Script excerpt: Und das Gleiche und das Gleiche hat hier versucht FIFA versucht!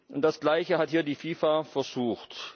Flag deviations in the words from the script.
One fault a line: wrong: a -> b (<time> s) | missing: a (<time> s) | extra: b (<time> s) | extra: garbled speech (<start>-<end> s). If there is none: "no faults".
missing: und das Gleiche (0.8 s)
wrong: versucht -> die (1.0 s)